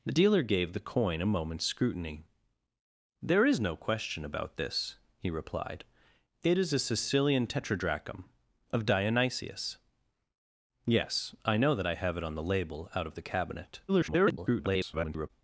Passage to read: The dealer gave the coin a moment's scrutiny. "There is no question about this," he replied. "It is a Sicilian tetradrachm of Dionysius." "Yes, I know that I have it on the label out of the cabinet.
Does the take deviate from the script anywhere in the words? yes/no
yes